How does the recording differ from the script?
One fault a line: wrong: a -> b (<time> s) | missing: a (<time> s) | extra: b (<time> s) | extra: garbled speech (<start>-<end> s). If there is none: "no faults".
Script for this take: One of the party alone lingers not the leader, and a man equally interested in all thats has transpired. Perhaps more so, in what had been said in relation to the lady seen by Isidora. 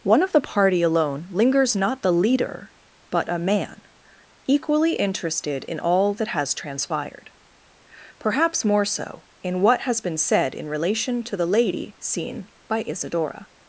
wrong: and -> but (3.1 s)
wrong: thats -> that (6.2 s)
wrong: had -> has (9.8 s)